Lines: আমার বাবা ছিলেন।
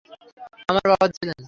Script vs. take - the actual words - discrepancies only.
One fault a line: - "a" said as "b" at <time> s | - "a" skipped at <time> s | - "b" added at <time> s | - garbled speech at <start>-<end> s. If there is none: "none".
none